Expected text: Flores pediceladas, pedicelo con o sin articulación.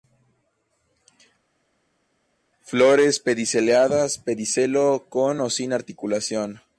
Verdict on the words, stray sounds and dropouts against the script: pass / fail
pass